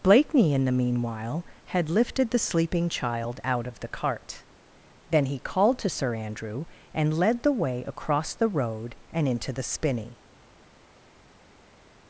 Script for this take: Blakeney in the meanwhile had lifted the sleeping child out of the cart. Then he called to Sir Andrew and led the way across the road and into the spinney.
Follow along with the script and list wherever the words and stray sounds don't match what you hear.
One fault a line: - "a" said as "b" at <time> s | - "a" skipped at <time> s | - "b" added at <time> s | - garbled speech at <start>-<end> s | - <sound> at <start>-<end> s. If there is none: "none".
none